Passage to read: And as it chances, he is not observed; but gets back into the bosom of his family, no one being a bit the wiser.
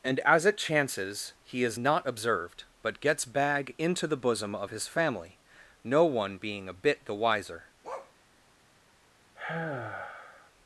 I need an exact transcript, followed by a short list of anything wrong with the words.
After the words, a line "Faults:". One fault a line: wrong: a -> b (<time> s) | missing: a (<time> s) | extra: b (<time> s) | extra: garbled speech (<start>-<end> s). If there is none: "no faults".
And as it chances, he is not observed; but gets bag into the bosom of his family, no one being a bit the wiser.
Faults:
wrong: back -> bag (3.2 s)